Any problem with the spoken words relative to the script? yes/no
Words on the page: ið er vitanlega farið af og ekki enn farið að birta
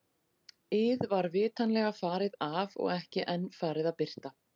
yes